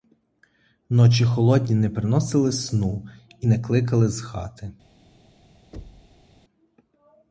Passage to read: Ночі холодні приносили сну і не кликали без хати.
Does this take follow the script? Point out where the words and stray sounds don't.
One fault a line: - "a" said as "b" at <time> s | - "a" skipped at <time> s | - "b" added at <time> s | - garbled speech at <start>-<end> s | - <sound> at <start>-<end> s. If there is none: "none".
- "не" added at 1.8 s
- "без" said as "з" at 4.1 s
- thud at 5.7-6.3 s